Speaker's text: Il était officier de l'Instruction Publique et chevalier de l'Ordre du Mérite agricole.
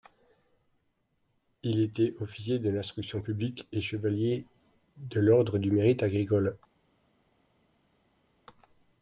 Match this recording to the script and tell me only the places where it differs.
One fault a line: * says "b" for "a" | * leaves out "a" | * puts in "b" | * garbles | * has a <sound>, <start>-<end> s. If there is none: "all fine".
all fine